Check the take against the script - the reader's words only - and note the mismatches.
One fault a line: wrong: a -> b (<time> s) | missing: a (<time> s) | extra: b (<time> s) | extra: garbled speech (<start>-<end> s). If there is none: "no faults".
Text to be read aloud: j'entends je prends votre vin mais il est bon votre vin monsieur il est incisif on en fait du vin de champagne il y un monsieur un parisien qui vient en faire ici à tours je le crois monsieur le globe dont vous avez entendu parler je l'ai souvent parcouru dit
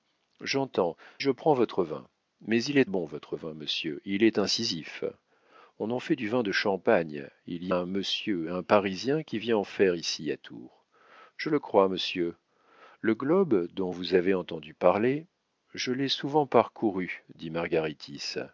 no faults